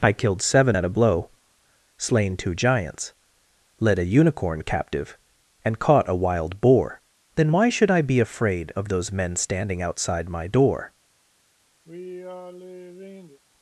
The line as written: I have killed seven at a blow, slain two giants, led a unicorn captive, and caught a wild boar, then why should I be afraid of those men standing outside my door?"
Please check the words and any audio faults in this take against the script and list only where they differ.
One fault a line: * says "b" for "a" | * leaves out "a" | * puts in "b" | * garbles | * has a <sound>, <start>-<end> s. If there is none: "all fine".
* leaves out "have"
* has a sigh, 11.8-13.4 s